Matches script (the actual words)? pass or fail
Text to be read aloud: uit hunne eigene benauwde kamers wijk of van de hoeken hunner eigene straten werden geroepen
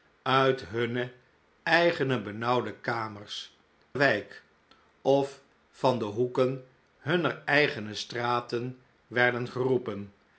pass